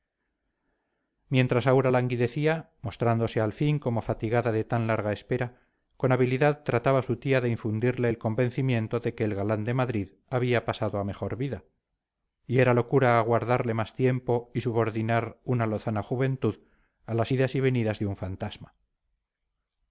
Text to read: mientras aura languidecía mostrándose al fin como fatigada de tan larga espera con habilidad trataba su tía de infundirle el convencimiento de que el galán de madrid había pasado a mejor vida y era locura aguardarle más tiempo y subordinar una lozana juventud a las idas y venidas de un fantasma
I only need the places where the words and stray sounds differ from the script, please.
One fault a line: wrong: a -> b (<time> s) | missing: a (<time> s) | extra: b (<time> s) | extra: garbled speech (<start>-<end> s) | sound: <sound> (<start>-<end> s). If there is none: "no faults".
no faults